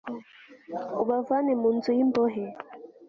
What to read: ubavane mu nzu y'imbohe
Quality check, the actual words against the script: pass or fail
pass